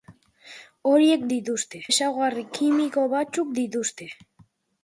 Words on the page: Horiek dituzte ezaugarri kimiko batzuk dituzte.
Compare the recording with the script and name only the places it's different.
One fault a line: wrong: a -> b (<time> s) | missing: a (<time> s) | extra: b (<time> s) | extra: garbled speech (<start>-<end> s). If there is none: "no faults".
no faults